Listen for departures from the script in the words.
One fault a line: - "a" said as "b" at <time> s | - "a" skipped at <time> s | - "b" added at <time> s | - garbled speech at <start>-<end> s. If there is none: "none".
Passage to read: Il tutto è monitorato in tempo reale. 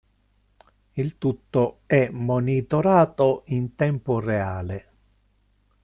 none